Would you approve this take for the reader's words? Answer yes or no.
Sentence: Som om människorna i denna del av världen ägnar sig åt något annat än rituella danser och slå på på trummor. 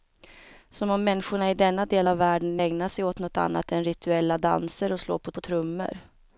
yes